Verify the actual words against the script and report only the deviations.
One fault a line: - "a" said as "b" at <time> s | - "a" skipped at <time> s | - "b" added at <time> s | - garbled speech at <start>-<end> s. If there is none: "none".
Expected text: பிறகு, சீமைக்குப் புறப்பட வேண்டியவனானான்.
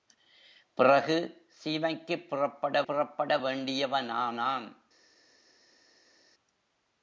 - "புறப்பட" added at 2.8 s